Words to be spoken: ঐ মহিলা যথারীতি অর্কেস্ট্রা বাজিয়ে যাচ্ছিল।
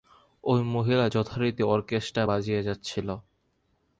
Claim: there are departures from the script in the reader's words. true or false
false